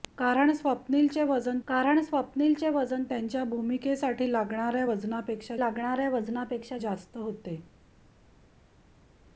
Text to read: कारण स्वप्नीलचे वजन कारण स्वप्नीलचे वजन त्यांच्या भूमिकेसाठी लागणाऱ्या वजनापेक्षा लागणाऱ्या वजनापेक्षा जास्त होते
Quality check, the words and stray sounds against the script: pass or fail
pass